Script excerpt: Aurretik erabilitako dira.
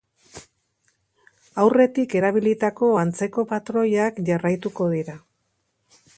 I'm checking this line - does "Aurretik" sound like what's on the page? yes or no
yes